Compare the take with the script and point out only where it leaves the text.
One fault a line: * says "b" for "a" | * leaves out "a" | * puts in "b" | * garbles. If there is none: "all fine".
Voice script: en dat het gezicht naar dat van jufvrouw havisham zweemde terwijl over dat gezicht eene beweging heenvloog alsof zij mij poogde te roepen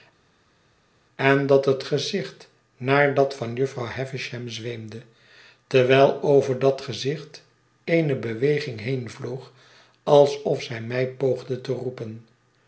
all fine